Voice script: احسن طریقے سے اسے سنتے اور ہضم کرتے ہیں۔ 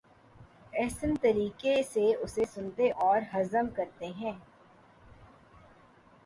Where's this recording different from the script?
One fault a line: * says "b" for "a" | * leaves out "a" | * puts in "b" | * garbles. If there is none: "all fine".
all fine